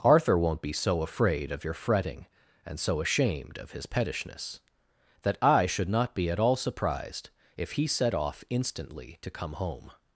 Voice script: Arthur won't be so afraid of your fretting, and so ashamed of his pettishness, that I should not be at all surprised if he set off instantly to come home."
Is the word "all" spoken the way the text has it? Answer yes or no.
yes